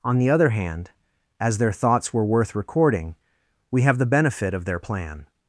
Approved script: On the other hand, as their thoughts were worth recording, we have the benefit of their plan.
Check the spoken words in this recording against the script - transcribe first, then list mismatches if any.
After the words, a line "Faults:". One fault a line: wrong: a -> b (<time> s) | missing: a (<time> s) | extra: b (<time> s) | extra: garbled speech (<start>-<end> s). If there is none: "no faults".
On the other hand, as their thoughts were worth recording, we have the benefit of their plan.
Faults:
no faults